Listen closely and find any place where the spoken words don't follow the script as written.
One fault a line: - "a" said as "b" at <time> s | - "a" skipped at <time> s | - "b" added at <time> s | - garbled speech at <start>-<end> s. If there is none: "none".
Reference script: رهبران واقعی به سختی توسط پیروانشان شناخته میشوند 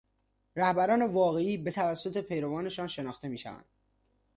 - "سختی" skipped at 1.7 s